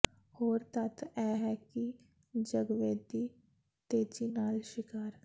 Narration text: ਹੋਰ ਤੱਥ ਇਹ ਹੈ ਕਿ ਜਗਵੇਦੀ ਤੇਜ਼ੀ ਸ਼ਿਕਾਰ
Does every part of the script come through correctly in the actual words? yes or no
no